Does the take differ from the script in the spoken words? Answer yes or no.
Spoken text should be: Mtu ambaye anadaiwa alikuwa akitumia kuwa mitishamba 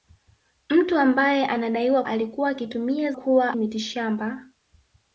no